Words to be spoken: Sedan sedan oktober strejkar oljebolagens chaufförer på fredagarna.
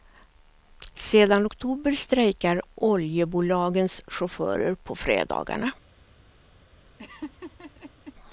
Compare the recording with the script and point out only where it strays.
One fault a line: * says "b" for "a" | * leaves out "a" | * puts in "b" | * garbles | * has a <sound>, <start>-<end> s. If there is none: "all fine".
* leaves out "sedan"
* has a laugh, 7.0-8.1 s